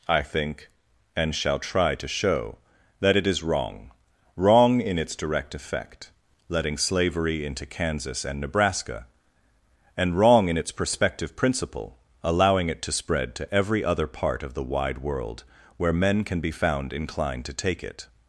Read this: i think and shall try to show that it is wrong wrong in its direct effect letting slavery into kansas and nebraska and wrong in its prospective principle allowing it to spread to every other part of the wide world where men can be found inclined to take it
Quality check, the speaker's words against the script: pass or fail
pass